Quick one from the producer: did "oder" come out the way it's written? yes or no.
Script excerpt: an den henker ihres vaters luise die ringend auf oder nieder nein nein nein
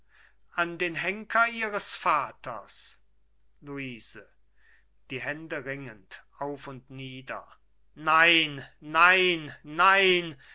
no